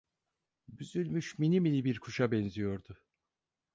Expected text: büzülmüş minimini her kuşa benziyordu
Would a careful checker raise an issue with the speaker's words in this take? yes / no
yes